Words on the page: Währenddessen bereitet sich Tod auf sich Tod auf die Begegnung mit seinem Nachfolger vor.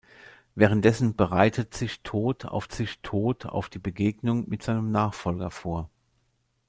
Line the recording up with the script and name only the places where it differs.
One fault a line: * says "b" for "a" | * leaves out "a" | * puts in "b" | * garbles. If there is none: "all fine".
all fine